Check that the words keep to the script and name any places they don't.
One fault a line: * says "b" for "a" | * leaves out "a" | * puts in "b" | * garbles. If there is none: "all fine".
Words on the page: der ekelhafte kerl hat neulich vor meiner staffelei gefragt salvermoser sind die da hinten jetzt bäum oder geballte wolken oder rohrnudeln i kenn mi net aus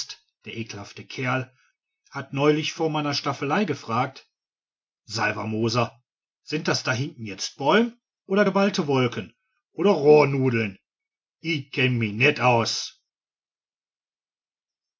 * says "das" for "die"